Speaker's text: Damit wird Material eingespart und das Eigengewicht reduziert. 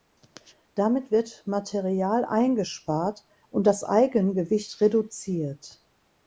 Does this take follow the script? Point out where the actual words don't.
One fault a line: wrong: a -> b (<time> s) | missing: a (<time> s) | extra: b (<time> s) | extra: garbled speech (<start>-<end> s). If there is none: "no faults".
no faults